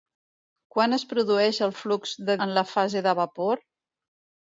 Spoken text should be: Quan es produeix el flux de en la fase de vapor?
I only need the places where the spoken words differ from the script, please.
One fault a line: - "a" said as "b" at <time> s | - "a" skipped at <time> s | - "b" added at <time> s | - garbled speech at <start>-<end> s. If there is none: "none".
none